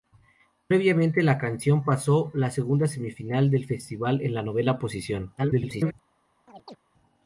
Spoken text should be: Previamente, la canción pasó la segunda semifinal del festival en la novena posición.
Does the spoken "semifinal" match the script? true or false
true